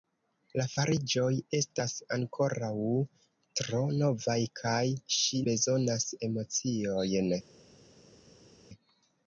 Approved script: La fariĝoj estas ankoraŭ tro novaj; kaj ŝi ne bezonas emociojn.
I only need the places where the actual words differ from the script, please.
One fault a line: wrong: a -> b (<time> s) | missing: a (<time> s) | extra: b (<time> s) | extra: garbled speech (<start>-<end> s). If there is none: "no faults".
missing: ne (5.4 s)